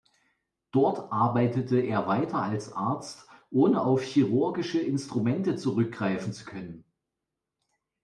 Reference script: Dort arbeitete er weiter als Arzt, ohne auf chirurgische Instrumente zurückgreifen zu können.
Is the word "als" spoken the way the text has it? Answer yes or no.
yes